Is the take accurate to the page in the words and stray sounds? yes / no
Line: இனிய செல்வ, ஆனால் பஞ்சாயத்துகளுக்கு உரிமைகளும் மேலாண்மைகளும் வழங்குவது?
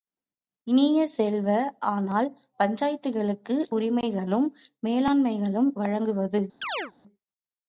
no